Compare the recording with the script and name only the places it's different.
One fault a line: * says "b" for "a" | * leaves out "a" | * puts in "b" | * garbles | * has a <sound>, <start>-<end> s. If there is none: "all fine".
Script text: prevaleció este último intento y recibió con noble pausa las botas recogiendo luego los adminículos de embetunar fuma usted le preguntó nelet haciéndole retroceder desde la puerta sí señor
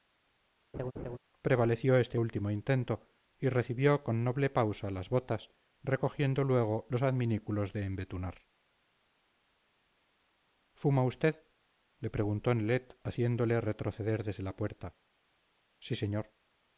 * has a laugh, 0.7-1.2 s